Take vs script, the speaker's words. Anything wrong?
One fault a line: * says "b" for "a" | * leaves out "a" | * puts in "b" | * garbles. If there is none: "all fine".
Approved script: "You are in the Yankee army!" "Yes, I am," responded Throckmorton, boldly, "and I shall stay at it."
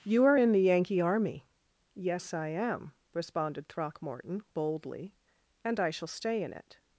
* says "in" for "at"